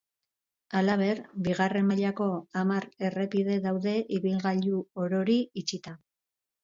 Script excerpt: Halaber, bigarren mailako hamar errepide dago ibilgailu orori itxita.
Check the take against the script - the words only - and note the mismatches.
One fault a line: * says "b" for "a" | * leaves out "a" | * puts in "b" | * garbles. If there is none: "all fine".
* says "daude" for "dago"